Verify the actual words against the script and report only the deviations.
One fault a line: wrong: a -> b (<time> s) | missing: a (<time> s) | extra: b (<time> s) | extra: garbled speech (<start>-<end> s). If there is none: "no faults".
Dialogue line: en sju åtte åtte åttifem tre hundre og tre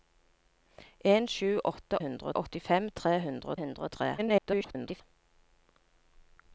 wrong: åtte -> hundre (2.0 s)
extra: hundre (3.6 s)
extra: garbled speech (4.2-5.0 s)